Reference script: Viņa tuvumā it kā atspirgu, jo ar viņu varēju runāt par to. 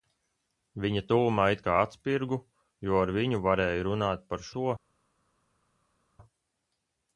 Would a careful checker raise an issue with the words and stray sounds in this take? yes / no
no